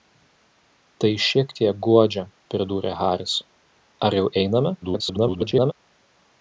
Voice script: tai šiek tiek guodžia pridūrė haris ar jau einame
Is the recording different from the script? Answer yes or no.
yes